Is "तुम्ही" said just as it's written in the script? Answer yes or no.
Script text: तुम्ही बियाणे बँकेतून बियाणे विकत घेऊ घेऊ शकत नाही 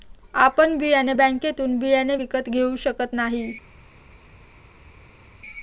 no